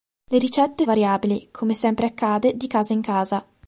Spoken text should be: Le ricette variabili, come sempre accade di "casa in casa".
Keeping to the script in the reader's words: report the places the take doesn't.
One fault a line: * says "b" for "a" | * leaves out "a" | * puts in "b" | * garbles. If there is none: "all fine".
all fine